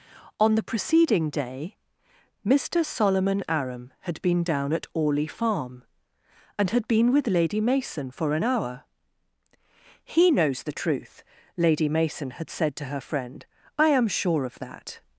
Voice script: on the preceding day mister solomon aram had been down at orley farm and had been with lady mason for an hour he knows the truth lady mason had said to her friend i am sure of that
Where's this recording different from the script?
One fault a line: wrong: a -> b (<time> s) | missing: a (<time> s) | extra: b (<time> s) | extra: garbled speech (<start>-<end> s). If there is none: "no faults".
no faults